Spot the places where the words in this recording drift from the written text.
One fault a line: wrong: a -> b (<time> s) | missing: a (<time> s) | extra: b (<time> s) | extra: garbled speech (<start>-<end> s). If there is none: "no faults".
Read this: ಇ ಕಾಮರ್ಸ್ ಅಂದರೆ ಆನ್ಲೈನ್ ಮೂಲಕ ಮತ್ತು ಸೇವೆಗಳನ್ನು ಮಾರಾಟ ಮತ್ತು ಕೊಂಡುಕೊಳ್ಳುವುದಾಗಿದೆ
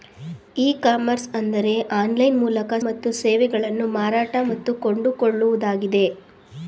no faults